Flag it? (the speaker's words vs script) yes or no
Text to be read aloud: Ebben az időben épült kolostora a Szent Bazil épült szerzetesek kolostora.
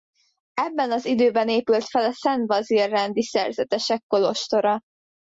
yes